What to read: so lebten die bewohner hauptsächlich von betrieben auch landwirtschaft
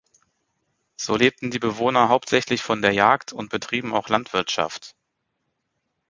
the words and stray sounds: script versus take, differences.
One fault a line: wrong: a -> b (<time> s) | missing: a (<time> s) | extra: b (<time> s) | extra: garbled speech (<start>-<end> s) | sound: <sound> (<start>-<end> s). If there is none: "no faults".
extra: der jagd und (2.8 s)